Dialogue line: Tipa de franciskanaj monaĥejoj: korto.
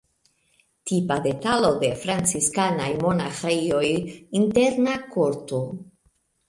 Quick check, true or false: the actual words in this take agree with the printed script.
false